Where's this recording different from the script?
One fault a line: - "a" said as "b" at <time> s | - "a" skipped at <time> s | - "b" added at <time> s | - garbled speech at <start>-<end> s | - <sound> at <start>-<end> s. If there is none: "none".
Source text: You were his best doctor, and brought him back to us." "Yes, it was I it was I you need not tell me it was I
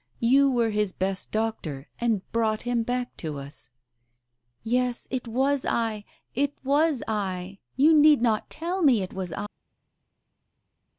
none